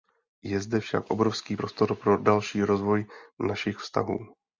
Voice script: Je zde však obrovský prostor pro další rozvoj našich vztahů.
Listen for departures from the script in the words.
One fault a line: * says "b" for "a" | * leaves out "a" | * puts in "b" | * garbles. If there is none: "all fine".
all fine